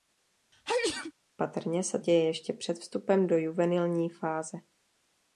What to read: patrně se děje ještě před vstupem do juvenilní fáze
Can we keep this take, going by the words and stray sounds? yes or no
no